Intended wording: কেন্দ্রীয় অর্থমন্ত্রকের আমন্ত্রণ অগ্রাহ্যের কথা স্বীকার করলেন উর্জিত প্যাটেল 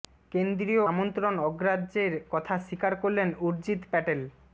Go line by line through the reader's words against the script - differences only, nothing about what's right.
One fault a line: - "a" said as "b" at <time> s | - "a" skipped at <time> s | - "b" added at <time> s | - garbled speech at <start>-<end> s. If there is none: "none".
- "অর্থমন্ত্রকের" skipped at 0.8 s